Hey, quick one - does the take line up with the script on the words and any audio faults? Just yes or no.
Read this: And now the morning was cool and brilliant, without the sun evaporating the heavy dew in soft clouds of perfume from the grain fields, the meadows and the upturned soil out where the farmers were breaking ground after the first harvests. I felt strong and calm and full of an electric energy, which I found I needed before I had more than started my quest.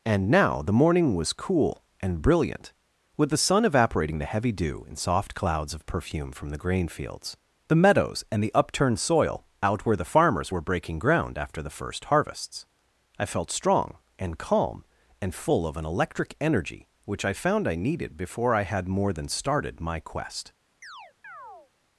no